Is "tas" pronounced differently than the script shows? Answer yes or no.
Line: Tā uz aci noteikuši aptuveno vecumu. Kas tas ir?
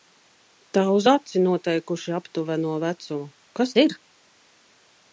yes